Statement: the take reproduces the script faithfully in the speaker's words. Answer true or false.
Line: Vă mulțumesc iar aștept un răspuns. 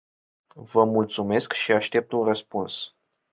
false